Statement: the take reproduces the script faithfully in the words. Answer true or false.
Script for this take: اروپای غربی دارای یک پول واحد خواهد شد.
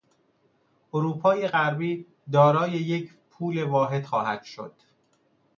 true